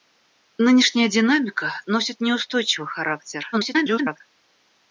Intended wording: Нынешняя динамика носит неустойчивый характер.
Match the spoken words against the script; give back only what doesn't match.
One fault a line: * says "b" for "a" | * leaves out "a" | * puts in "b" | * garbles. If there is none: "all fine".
* garbles